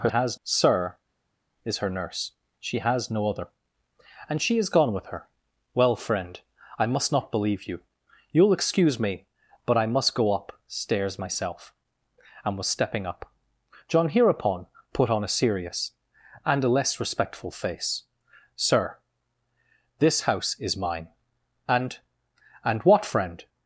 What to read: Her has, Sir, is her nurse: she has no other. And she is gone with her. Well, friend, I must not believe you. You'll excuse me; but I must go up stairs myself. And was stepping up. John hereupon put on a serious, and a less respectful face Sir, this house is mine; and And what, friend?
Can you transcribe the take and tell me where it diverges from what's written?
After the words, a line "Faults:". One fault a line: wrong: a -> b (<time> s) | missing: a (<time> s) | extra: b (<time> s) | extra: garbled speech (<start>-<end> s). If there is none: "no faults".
Her has, Sir, is her nurse: she has no other. And she is gone with her. Well, friend, I must not believe you. You'll excuse me; but I must go up stairs myself. And was stepping up. John hereupon put on a serious, and a less respectful face Sir, this house is mine; and And what, friend?
Faults:
no faults